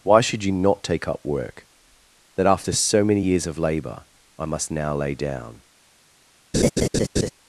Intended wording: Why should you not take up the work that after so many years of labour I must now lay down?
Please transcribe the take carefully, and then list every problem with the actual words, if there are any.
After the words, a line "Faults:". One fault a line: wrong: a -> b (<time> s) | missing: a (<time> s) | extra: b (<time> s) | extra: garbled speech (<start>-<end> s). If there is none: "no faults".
Why should you not take up work that after so many years of labour I must now lay down?
Faults:
missing: the (1.2 s)